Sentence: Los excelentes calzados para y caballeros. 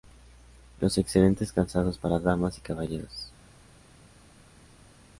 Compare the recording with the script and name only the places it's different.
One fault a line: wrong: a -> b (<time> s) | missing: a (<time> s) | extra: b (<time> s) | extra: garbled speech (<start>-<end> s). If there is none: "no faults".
extra: damas (2.2 s)